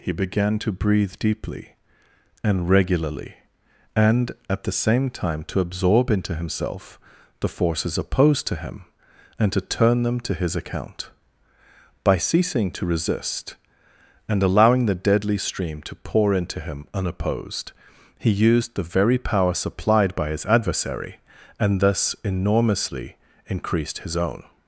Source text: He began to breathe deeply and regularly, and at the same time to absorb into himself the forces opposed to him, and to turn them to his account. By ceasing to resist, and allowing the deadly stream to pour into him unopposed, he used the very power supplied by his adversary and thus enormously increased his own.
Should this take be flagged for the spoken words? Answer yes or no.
no